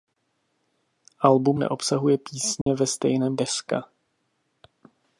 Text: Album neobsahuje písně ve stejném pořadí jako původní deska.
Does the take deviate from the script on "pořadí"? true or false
true